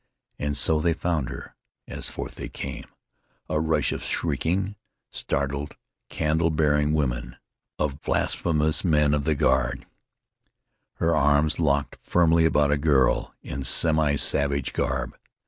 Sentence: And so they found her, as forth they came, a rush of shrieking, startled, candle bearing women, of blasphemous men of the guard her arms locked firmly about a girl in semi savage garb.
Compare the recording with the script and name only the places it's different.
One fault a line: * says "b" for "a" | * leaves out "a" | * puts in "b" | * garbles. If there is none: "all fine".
all fine